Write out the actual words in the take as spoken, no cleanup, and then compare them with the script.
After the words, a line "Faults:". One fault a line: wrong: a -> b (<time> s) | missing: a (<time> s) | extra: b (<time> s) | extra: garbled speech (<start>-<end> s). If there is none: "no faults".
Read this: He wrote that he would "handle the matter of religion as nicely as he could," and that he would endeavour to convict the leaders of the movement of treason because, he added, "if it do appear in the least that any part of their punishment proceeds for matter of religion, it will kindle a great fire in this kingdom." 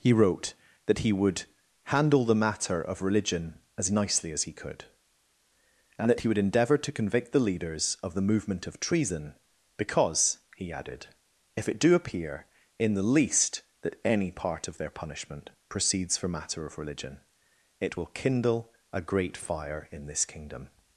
He wrote that he would "handle the matter of religion as nicely as he could," and that he would endeavour to convict the leaders of the movement of treason because, he added, "if it do appear in the least that any part of their punishment proceeds for matter of religion, it will kindle a great fire in this kingdom."
Faults:
no faults